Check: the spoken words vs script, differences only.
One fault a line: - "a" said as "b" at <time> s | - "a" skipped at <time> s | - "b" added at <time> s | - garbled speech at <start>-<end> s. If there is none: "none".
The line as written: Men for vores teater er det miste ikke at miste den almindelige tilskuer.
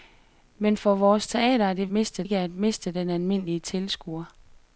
none